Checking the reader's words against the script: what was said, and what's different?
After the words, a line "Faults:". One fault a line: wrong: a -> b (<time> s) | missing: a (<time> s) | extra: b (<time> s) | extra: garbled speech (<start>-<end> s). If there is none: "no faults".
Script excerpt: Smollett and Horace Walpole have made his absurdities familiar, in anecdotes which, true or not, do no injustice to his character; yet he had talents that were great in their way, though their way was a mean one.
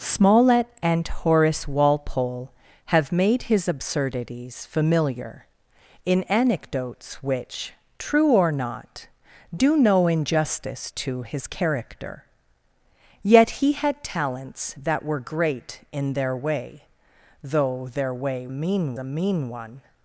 Smollett and Horace Walpole have made his absurdities familiar, in anecdotes which, true or not, do no injustice to his character; yet he had talents that were great in their way, though their way mean a mean one.
Faults:
wrong: was -> mean (18.5 s)